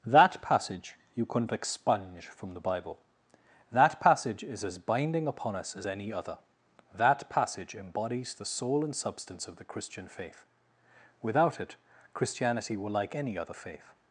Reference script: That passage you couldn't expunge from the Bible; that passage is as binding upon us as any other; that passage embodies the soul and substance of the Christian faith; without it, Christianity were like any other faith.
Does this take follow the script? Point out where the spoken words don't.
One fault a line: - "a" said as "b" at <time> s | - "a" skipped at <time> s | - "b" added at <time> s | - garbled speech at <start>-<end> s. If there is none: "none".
none